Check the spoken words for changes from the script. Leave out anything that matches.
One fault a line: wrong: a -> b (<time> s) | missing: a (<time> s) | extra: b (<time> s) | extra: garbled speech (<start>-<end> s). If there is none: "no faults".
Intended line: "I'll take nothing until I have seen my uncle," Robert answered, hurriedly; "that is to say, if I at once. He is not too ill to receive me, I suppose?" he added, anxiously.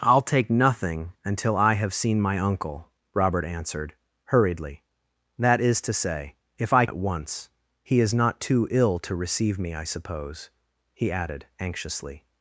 no faults